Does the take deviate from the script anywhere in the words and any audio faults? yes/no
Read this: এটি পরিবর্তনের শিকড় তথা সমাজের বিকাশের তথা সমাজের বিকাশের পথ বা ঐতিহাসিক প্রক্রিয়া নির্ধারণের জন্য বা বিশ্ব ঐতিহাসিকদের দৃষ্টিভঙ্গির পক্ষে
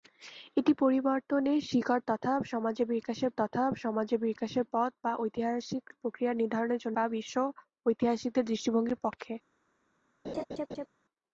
yes